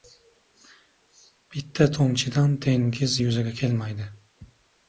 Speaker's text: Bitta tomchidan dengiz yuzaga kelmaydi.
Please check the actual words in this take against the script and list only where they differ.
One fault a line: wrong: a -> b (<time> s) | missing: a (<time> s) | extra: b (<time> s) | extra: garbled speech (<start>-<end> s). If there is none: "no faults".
no faults